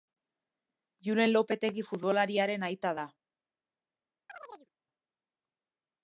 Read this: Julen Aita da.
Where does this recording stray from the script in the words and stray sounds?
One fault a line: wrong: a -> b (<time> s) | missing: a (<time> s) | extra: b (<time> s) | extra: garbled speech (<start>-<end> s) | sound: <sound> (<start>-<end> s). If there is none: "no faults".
extra: Lopetegi futbolariaren (1.4 s)
sound: chirp (4.3-4.7 s)